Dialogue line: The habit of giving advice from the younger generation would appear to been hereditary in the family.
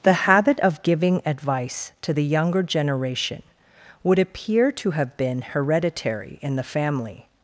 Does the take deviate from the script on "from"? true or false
true